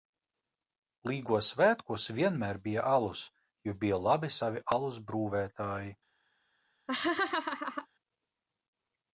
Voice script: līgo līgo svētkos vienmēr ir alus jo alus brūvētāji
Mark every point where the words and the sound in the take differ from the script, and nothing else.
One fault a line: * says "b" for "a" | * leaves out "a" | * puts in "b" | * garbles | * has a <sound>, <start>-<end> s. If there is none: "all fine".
* leaves out "līgo"
* says "bija" for "ir"
* puts in "bija labi savi"
* has a laugh, 6.9-7.9 s